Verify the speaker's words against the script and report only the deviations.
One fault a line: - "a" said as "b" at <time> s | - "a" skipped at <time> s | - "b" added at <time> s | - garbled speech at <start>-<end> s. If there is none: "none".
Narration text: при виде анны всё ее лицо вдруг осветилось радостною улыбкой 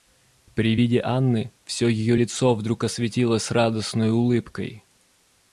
none